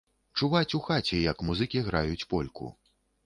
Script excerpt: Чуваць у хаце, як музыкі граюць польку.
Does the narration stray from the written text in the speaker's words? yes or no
no